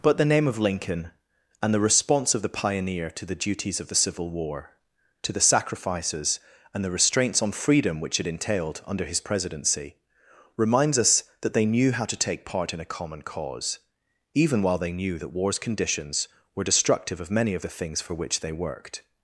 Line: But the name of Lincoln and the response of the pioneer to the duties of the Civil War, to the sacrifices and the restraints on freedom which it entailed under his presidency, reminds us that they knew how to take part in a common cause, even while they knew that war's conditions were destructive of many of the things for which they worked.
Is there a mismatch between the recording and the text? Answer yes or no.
no